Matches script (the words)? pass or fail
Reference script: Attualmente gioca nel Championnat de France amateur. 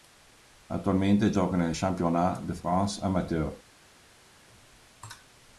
pass